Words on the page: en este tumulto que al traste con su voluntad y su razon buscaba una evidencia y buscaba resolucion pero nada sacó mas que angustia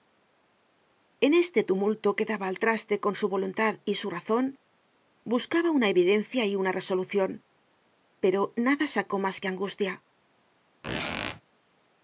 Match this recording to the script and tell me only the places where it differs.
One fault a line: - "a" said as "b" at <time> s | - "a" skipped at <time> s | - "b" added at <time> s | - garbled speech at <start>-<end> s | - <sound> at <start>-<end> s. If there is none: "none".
- "daba" added at 2.3 s
- "buscaba" said as "una" at 6.5 s
- squeak at 10.8-11.4 s